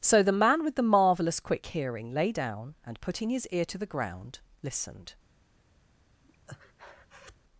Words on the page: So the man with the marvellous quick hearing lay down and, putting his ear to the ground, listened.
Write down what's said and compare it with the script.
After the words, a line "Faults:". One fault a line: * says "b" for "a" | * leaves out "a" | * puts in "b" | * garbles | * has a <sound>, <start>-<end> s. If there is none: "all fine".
So the man with the marvellous quick hearing lay down and, putting his ear to the ground, listened.
Faults:
* has a breath, 6.2-7.4 s